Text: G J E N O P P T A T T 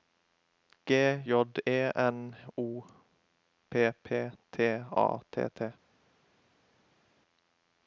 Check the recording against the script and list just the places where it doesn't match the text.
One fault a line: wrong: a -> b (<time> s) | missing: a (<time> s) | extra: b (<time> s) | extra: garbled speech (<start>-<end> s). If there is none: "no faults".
no faults